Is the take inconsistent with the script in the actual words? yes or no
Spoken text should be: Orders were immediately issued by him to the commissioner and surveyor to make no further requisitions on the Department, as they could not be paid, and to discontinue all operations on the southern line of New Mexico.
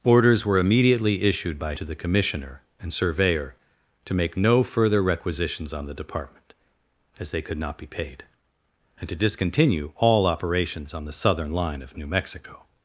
yes